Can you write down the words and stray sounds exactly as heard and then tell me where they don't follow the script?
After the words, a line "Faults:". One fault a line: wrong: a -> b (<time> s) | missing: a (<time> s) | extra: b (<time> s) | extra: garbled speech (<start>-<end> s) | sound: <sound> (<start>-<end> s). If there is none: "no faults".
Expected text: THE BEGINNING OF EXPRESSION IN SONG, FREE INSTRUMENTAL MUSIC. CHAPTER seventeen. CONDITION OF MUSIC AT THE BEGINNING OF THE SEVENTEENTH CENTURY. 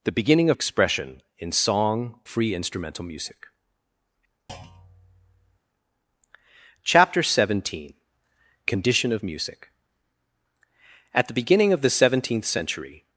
THE BEGINNING OF EXPRESSION IN SONG, FREE INSTRUMENTAL MUSIC. CHAPTER seventeen. CONDITION OF MUSIC AT THE BEGINNING OF THE SEVENTEENTH CENTURY.
Faults:
sound: thud (4.5-5.6 s)